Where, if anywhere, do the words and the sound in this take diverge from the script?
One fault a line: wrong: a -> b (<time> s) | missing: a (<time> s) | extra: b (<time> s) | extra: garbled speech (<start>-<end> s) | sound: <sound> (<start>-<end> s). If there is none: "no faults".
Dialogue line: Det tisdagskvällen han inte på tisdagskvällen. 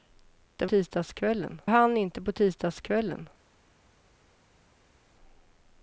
no faults